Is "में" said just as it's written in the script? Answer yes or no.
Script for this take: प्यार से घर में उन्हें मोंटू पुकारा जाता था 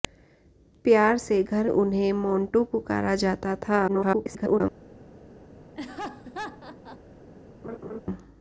no